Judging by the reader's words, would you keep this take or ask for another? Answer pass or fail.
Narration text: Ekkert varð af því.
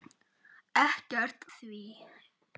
fail